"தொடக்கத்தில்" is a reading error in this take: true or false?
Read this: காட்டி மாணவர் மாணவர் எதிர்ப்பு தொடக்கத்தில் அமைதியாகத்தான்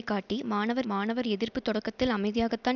false